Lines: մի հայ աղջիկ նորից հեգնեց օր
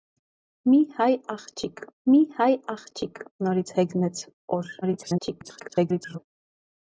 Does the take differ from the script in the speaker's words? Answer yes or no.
yes